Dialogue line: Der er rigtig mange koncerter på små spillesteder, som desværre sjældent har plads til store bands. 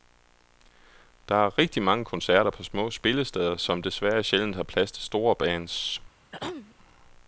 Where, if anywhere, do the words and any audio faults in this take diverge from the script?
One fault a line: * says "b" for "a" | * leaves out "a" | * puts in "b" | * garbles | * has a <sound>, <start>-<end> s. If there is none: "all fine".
* has a throat clearing, 6.3-6.8 s